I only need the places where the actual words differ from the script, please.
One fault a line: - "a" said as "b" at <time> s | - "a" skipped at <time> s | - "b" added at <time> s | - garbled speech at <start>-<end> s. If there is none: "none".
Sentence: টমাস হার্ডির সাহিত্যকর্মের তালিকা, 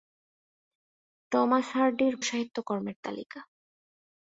none